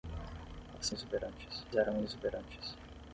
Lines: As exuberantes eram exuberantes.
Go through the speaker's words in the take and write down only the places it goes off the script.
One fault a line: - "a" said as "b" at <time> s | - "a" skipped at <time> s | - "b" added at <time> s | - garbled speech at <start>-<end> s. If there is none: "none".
none